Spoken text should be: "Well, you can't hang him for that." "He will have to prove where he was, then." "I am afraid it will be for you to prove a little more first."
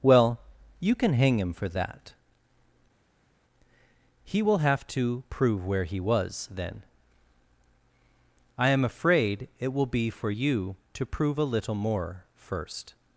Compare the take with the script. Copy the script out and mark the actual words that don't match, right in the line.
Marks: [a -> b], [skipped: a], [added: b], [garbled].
"Well, you [can't -> can] hang him for that." "He will have to prove where he was, then." "I am afraid it will be for you to prove a little more first."